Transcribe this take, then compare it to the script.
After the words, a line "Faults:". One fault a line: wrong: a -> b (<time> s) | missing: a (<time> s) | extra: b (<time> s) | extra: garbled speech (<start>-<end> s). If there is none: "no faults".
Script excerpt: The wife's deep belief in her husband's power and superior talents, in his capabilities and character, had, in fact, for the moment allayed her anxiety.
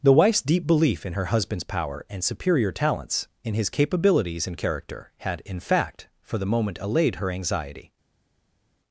The wife's deep belief in her husband's power and superior talents, in his capabilities and character, had, in fact, for the moment allayed her anxiety.
Faults:
no faults